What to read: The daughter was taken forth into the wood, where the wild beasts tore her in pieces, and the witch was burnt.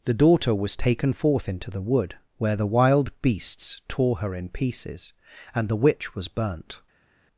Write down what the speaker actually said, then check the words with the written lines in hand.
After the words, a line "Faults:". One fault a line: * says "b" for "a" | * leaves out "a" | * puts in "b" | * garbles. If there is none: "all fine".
The daughter was taken forth into the wood, where the wild beasts tore her in pieces, and the witch was burnt.
Faults:
all fine